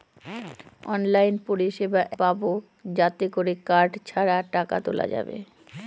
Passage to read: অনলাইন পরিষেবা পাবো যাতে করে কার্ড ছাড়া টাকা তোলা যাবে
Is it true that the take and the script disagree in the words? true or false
false